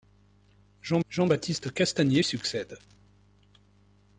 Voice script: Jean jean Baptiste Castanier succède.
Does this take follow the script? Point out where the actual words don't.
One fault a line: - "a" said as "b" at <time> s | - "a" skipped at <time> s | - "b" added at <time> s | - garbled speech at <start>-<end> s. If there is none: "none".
none